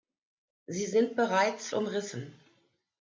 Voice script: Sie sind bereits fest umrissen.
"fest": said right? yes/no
no